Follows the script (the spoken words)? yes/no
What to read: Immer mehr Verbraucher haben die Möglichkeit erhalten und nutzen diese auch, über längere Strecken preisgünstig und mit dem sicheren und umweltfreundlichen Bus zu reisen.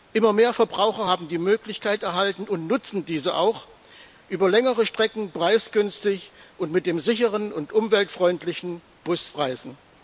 no